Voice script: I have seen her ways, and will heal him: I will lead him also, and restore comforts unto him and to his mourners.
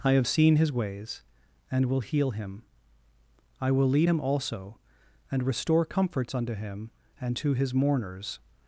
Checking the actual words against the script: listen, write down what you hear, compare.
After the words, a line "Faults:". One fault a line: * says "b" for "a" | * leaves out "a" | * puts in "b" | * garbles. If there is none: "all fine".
I have seen his ways, and will heal him: I will lead him also, and restore comforts unto him and to his mourners.
Faults:
* says "his" for "her"